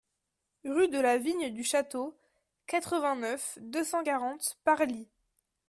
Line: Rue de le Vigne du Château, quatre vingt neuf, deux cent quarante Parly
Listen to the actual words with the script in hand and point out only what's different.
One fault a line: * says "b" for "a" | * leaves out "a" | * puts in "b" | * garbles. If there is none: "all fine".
* says "la" for "le"